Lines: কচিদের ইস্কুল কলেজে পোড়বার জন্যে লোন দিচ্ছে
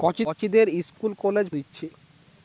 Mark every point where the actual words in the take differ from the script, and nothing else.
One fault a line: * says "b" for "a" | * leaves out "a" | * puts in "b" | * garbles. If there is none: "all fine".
* leaves out "পোড়বার জন্যে লোন"